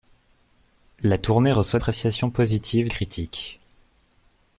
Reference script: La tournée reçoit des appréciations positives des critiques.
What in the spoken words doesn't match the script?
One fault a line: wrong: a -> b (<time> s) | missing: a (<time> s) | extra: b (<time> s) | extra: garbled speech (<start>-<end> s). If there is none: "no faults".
missing: des (1.8 s)
missing: des (2.9 s)